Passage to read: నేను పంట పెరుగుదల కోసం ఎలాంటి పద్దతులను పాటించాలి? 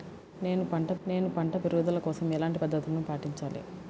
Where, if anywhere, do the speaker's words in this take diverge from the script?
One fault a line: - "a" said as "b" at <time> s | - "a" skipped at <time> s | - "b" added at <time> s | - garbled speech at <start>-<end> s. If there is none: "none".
- "నేను పంట" added at 1.1 s